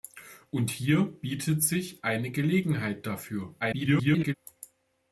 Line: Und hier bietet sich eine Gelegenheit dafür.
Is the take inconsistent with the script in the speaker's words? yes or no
yes